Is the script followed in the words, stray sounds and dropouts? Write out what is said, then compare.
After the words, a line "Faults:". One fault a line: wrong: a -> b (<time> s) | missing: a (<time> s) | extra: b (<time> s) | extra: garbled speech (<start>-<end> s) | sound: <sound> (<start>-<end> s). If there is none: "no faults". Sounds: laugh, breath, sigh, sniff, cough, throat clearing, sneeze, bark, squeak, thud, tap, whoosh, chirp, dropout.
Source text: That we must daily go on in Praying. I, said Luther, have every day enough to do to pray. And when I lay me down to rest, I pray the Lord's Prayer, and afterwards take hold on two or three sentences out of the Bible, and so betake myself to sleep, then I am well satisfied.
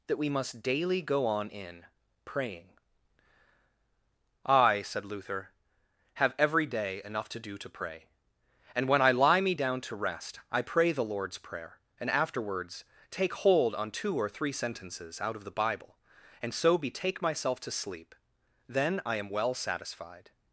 That we must daily go on in Praying. I, said Luther, have every day enough to do to pray. And when I lie me down to rest, I pray the Lord's Prayer, and afterwards take hold on two or three sentences out of the Bible, and so betake myself to sleep, then I am well satisfied.
Faults:
wrong: lay -> lie (9.1 s)